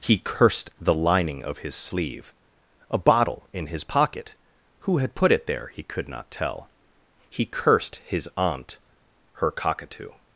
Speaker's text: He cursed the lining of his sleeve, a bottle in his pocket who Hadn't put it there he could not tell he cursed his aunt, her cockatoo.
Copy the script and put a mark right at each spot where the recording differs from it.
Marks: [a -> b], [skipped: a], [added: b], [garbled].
He cursed the lining of his sleeve, a bottle in his pocket who [Hadn't -> Had] put it there he could not tell he cursed his aunt, her cockatoo.